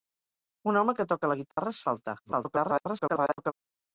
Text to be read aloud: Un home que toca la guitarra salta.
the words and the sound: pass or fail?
fail